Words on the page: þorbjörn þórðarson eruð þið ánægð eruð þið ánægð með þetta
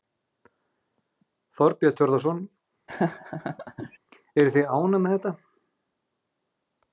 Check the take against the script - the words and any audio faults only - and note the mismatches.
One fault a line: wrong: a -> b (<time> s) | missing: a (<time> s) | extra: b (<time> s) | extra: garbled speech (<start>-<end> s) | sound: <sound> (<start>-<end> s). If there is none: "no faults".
sound: laugh (2.9-4.0 s)
missing: eruð þið ánægð (5.0 s)